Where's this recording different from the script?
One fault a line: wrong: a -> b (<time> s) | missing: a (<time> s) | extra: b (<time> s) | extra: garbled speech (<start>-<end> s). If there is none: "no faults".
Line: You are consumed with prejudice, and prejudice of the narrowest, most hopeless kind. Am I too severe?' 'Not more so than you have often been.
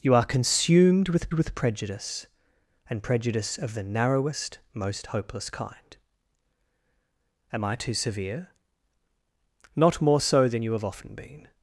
extra: with (1.3 s)